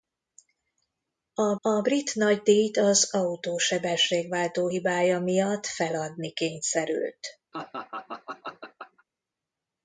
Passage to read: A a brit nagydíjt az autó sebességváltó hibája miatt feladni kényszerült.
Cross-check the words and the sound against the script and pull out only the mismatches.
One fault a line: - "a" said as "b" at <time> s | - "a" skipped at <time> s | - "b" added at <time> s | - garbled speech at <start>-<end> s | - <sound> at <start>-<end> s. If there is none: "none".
- laugh at 7.5-9.0 s